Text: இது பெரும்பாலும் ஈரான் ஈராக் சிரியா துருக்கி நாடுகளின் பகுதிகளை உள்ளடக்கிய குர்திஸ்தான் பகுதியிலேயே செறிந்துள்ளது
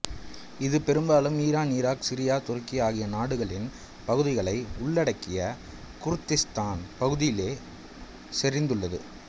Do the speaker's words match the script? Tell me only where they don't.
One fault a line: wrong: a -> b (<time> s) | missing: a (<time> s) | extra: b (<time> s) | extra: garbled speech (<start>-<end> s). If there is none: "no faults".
extra: ஆகிய (2.8 s)